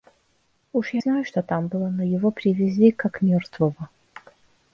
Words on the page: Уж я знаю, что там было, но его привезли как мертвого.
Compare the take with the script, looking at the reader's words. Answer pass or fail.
pass